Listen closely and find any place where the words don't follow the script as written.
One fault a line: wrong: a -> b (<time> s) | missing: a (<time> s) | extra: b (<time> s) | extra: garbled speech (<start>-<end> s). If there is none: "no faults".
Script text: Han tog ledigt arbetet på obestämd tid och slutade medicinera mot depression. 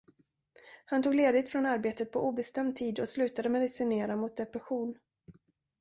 extra: från (1.5 s)